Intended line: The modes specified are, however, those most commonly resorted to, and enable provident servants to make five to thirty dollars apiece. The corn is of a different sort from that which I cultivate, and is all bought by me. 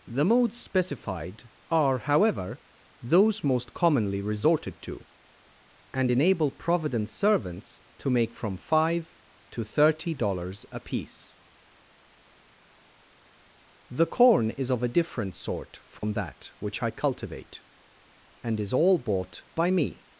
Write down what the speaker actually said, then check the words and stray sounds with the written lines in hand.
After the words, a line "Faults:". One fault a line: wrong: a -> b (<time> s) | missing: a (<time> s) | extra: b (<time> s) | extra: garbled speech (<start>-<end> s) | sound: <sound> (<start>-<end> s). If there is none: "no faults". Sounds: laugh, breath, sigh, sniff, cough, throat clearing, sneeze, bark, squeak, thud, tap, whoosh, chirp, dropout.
The modes specified are, however, those most commonly resorted to, and enable provident servants to make from five to thirty dollars apiece. The corn is of a different sort from that which I cultivate, and is all bought by me.
Faults:
extra: from (8.3 s)
sound: dropout (16.0-16.0 s)